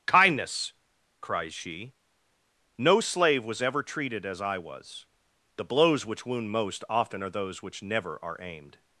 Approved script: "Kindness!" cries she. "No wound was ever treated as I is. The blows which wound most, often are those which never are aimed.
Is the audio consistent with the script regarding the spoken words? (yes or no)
no